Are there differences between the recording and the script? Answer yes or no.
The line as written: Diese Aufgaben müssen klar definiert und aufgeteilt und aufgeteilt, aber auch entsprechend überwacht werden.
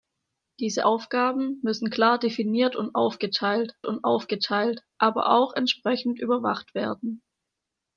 no